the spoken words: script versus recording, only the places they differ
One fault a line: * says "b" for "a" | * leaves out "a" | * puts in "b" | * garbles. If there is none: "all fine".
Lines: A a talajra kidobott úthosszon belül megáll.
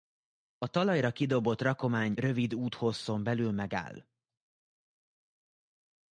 * leaves out "a"
* puts in "rakomány rövid"